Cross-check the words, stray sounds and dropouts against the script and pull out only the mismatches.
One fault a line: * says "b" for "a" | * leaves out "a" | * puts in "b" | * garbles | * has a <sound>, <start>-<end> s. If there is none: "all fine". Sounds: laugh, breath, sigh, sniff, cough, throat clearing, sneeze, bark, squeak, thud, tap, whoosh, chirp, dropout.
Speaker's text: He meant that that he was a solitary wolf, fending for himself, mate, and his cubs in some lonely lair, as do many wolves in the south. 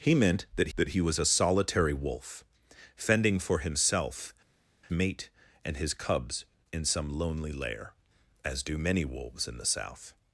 all fine